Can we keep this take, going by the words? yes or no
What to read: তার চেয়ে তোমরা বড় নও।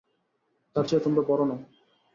yes